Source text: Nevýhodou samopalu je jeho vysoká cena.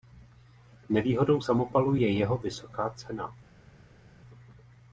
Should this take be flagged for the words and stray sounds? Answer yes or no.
no